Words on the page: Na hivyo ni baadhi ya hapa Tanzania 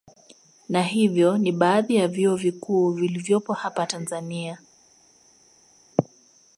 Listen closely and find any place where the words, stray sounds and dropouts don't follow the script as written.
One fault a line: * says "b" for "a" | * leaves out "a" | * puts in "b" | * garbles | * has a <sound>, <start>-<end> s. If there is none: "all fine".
* puts in "vyuo vikuu vilivyopo"